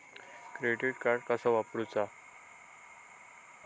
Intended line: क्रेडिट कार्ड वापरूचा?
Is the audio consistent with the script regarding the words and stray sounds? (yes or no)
no